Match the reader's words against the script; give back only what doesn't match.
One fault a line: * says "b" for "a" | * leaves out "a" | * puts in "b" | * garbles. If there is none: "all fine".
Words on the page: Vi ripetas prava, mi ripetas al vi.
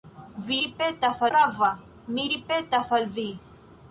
all fine